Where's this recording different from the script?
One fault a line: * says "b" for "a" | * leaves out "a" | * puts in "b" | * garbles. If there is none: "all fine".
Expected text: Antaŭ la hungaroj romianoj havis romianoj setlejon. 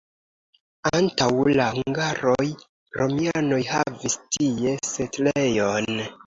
* says "tie" for "romianoj"